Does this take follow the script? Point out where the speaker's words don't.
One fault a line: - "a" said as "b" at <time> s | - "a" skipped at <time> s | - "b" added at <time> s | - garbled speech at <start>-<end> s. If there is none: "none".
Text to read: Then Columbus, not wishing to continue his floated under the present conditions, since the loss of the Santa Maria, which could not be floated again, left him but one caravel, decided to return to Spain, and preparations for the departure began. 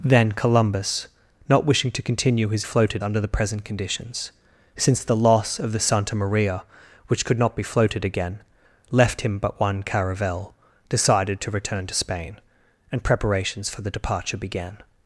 none